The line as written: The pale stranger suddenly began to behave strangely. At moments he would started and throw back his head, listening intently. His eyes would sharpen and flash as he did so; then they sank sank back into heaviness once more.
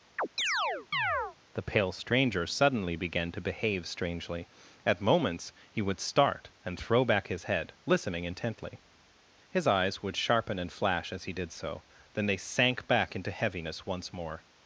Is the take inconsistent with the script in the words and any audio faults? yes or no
yes